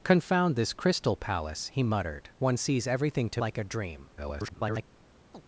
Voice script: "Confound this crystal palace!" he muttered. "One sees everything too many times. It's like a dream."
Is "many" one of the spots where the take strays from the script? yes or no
yes